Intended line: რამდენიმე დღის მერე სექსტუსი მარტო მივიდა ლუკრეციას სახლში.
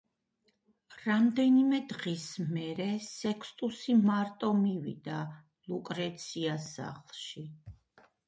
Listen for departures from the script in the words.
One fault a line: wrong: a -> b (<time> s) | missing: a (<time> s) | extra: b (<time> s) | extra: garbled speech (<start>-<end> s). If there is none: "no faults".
no faults